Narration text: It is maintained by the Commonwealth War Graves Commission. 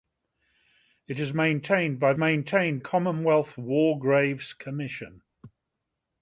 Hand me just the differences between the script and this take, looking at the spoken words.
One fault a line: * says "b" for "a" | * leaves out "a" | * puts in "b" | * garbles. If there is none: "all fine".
* says "maintained" for "the"